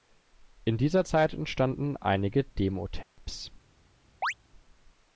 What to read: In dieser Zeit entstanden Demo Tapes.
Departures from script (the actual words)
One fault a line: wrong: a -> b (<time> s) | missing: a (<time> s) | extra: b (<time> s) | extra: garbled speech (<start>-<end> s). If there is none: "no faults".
extra: einige (2.0 s)